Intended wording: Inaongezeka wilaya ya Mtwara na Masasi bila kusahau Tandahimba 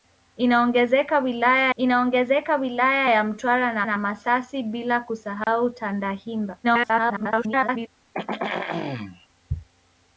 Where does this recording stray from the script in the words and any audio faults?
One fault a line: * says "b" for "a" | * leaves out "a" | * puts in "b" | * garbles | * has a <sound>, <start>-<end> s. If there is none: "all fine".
* puts in "inaongezeka wilaya"
* puts in "na"
* has a dropout, 5.4-5.5 s
* garbles
* has a throat clearing, 8.1-9.3 s